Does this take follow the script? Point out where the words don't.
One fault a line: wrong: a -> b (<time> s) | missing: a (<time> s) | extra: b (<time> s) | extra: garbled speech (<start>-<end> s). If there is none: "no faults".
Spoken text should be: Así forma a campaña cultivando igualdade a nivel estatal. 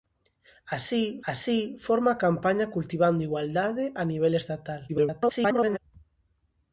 extra: así (1.3 s)
extra: garbled speech (4.9-5.8 s)